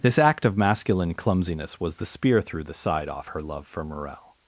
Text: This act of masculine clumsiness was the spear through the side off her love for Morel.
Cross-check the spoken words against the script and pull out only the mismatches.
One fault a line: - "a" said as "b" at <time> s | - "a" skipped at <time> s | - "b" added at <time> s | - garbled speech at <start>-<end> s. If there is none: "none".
none